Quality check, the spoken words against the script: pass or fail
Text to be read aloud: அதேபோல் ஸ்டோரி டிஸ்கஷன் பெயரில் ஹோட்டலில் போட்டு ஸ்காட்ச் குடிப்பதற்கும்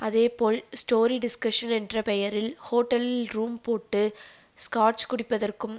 fail